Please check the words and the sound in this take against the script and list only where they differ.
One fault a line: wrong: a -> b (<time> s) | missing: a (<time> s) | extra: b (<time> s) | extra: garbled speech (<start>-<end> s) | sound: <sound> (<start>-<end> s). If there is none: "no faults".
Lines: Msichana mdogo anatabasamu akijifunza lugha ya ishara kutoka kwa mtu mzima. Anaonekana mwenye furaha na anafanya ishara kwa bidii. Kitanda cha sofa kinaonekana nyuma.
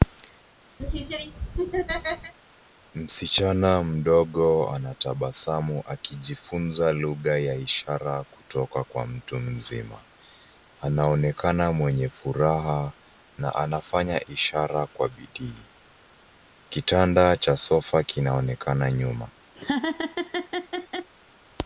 sound: laugh (0.8-2.3 s)
sound: laugh (19.5-21.1 s)